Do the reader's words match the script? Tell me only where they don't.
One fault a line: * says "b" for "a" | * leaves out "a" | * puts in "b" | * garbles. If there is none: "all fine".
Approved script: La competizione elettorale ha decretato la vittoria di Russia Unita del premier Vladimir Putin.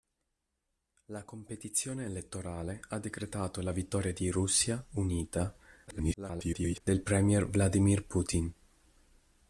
* garbles